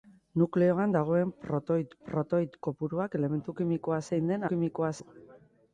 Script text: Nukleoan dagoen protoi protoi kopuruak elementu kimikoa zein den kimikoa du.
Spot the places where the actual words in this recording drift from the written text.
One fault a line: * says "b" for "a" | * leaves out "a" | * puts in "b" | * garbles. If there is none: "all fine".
all fine